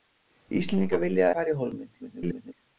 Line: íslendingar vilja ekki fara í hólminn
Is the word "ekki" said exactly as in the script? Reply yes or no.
no